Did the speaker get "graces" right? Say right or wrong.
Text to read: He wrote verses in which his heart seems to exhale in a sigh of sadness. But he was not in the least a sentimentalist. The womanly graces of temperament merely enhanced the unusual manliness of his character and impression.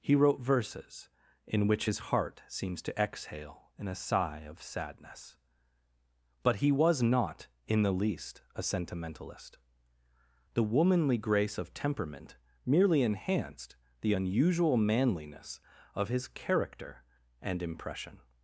wrong